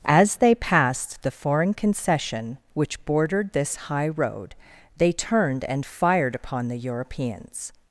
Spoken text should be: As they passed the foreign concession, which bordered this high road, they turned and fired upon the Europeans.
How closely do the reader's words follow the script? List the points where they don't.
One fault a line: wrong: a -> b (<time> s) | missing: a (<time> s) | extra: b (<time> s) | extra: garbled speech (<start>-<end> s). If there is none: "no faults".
no faults